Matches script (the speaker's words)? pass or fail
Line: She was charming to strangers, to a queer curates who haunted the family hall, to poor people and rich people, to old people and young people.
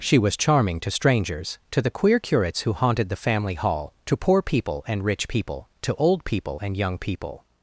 fail